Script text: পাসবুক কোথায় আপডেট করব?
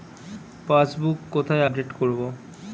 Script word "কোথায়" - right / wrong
right